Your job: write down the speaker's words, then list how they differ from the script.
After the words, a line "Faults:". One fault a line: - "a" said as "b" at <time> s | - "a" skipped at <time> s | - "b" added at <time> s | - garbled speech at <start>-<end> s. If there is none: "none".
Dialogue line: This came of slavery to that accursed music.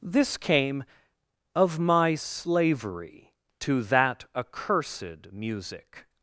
This came of my slavery to that accursed music.
Faults:
- "my" added at 1.8 s